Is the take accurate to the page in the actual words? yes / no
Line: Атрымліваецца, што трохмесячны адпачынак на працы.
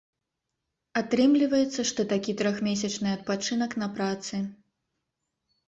no